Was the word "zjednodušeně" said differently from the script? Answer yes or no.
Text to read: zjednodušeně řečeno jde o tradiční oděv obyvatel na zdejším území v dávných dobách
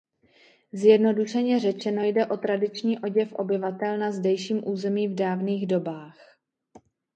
no